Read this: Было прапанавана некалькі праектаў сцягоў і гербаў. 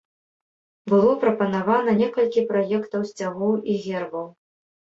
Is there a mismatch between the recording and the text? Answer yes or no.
no